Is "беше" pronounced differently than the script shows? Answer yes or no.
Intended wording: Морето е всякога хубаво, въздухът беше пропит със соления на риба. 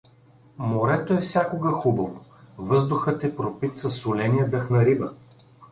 yes